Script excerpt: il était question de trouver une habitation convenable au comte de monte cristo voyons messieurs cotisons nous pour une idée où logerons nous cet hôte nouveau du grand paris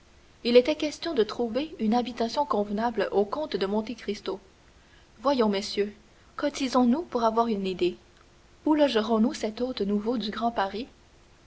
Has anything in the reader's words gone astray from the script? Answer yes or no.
yes